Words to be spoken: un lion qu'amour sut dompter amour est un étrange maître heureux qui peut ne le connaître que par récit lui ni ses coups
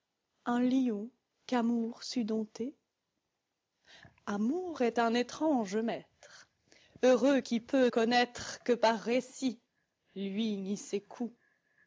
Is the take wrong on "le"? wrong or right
wrong